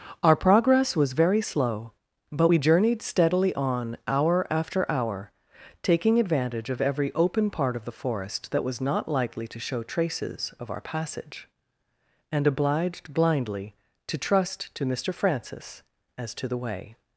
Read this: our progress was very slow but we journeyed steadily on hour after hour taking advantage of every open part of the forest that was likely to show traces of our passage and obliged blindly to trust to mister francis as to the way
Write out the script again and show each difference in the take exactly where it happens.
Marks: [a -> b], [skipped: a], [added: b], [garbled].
our progress was very slow but we journeyed steadily on hour after hour taking advantage of every open part of the forest that was [added: not] likely to show traces of our passage and obliged blindly to trust to mister francis as to the way